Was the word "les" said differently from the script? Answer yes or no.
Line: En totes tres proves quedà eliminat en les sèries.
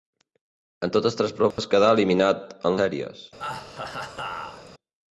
yes